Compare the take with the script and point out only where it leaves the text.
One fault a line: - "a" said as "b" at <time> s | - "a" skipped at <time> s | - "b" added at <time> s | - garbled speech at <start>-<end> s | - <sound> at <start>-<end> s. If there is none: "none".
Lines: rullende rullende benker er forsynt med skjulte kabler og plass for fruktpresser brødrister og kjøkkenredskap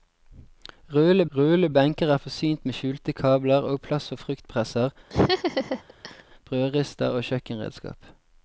- laugh at 5.1-6.2 s